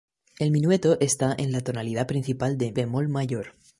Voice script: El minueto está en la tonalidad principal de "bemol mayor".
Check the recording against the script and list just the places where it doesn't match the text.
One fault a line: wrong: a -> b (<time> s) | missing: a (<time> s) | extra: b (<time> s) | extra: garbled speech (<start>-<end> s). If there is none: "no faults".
no faults